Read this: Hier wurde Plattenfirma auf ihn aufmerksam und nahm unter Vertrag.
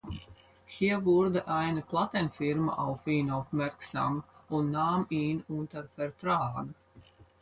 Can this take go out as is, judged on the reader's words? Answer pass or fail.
fail